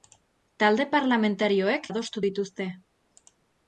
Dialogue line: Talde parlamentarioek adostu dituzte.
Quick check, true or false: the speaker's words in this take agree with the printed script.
true